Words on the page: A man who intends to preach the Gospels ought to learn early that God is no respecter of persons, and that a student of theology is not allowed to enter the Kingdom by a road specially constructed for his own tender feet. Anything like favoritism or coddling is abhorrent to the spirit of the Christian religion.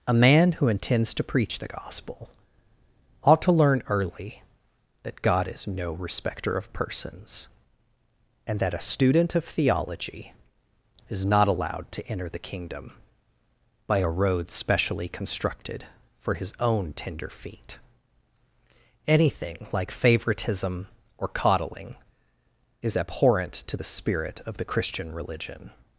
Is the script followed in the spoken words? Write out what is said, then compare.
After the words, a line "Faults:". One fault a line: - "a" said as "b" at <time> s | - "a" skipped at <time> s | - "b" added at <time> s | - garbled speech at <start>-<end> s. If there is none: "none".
A man who intends to preach the Gospel ought to learn early that God is no respecter of persons, and that a student of theology is not allowed to enter the Kingdom by a road specially constructed for his own tender feet. Anything like favoritism or coddling is abhorrent to the spirit of the Christian religion.
Faults:
- "Gospels" said as "Gospel" at 1.7 s